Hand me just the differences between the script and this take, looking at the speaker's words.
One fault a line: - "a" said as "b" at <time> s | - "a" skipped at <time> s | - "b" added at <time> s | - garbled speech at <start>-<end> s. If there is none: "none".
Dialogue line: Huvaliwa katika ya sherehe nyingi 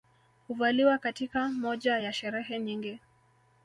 - "moja" added at 1.5 s